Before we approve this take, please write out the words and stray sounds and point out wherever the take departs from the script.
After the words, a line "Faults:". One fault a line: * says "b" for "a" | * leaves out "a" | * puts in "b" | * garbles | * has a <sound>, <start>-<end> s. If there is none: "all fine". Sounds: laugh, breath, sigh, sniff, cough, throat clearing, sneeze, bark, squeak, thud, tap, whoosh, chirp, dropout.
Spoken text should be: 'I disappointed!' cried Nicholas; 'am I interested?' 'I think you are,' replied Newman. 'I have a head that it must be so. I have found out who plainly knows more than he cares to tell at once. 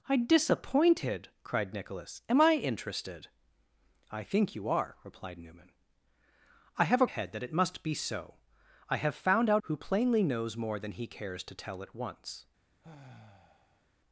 'I disappointed!' cried Nicholas; 'am I interested?' 'I think you are,' replied Newman. 'I have a head that it must be so. I have found out who plainly knows more than he cares to tell at once.
Faults:
* has a sigh, 12.8-13.9 s